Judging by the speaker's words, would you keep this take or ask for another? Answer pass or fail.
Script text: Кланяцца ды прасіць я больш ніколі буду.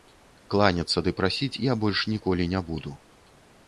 fail